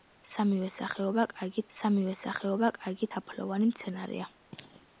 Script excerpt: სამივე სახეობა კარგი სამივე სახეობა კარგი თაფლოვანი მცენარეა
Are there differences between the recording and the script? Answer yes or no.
no